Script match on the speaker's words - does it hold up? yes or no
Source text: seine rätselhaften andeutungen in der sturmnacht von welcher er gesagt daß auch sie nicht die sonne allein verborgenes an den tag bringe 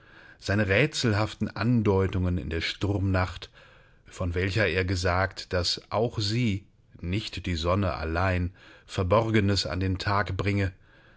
yes